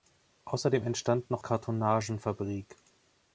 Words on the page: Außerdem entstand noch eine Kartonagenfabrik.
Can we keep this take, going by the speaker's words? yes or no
no